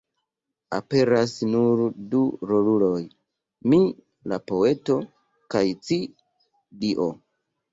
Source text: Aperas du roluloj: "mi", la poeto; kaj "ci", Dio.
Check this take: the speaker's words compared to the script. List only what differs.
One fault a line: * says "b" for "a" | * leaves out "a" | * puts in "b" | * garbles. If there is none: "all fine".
* puts in "nur"